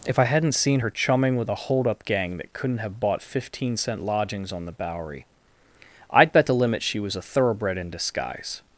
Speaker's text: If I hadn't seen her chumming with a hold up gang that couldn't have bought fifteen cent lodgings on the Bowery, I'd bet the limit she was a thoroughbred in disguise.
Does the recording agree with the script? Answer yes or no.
yes